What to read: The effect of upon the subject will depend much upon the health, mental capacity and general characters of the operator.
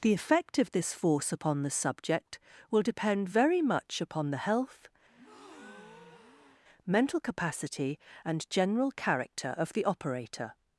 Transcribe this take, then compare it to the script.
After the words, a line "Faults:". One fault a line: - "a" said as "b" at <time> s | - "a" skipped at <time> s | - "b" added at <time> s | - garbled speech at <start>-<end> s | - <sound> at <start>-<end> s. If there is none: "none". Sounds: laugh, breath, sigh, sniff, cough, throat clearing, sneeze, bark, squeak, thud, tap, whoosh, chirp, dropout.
The effect of this force upon the subject will depend very much upon the health, mental capacity and general character of the operator.
Faults:
- "this force" added at 0.7 s
- "very" added at 3.3 s
- breath at 5.1-6.6 s
- "characters" said as "character" at 8.9 s